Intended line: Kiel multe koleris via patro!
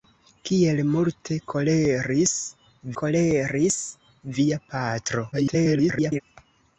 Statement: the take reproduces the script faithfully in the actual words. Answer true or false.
false